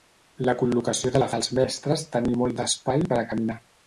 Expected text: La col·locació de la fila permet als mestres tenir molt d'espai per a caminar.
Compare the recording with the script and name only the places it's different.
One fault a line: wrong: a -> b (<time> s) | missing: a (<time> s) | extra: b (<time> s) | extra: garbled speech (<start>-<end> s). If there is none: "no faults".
missing: fila permet (1.3 s)